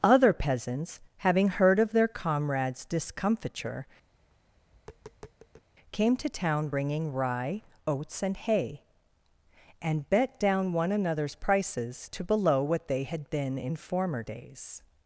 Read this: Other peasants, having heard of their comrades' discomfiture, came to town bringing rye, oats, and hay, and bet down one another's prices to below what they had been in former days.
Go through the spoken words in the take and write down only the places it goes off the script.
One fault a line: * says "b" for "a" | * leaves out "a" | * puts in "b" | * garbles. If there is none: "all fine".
all fine